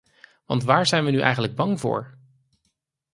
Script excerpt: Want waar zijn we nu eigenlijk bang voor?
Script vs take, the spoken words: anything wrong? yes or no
no